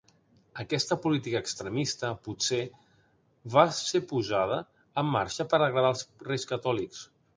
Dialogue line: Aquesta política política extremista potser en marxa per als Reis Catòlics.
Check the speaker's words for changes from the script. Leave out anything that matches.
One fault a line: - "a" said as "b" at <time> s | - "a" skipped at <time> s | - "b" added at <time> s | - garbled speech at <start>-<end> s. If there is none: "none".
- "política" skipped at 1.4 s
- "va ser posada" added at 3.6 s
- "agradar" added at 5.7 s